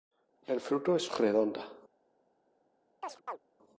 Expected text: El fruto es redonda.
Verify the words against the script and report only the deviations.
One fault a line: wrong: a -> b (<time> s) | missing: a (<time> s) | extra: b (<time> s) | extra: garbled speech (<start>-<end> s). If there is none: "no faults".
no faults